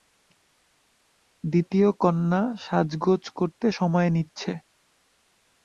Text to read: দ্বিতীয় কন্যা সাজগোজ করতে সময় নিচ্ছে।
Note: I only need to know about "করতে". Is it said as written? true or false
true